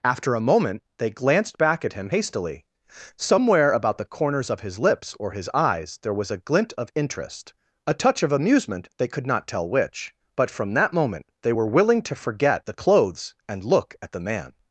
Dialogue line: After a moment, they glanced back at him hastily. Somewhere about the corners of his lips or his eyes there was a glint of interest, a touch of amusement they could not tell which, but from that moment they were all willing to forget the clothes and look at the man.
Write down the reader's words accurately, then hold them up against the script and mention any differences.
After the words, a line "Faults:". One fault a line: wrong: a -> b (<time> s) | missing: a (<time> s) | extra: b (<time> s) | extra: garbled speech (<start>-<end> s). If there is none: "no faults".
After a moment, they glanced back at him hastily. Somewhere about the corners of his lips or his eyes there was a glint of interest, a touch of amusement they could not tell which, but from that moment they were willing to forget the clothes and look at the man.
Faults:
missing: all (11.7 s)